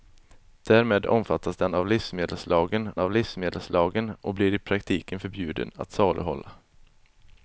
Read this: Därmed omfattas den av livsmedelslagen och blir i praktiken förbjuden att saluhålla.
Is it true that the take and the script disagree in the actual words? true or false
true